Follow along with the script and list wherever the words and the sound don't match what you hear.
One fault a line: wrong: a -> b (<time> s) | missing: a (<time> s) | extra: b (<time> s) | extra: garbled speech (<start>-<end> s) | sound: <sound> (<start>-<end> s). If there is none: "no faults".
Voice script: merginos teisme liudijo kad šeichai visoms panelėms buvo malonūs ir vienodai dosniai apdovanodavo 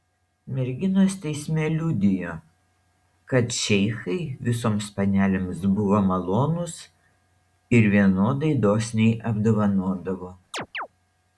sound: chirp (10.5-10.9 s)